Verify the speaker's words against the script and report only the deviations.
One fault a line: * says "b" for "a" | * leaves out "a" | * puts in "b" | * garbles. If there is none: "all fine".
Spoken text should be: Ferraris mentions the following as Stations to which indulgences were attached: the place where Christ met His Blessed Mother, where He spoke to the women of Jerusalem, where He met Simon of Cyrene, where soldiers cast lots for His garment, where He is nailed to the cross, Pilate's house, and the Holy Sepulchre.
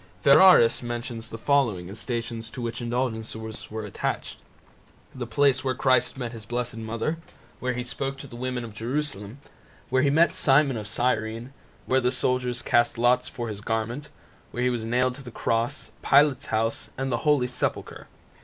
* puts in "the"
* says "was" for "is"